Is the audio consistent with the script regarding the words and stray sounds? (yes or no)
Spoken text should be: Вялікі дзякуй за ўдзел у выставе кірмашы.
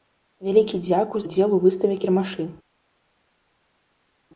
no